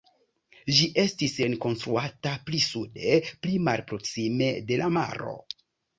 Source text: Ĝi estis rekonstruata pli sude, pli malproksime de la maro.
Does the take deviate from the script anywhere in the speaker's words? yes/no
no